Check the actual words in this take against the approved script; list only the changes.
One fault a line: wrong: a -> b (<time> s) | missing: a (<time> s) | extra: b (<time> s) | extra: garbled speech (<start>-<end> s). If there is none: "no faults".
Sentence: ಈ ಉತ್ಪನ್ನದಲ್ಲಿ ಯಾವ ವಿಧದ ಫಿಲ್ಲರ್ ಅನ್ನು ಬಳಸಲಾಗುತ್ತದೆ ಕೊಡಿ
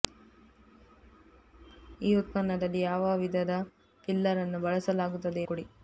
no faults